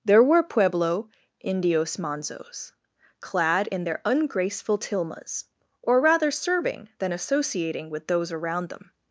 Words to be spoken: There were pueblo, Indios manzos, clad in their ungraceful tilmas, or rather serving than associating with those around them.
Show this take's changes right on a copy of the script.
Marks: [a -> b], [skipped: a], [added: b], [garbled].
There were pueblo, Indios manzos, clad in their ungraceful tilmas, or rather serving than associating with those around them.